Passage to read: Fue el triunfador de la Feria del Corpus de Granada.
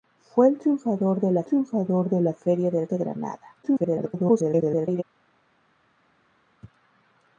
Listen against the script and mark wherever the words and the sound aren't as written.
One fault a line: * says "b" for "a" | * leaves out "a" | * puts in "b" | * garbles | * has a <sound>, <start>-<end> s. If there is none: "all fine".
* puts in "triunfador de la"
* leaves out "Corpus"
* garbles